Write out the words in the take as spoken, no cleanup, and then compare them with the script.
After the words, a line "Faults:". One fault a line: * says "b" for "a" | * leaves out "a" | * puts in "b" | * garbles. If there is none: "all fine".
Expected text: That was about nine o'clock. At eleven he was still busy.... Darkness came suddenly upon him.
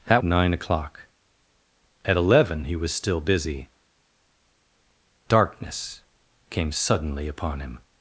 That nine o'clock. At eleven he was still busy.... Darkness came suddenly upon him.
Faults:
* leaves out "was about"